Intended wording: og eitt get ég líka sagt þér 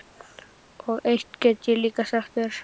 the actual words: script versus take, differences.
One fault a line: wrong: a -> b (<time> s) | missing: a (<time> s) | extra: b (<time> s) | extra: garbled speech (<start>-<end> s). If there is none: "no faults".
no faults